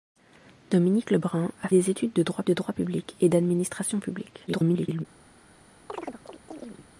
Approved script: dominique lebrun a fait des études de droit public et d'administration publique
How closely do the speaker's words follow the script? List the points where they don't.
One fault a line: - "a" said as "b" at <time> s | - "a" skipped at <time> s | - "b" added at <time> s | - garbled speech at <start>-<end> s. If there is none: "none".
- "fait" skipped at 1.7 s
- "de droit" added at 2.4 s
- garbled speech at 4.5-5.0 s